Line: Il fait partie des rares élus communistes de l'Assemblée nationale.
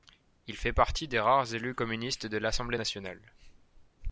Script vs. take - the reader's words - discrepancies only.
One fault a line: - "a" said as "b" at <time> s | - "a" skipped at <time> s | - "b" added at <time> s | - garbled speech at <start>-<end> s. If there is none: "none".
none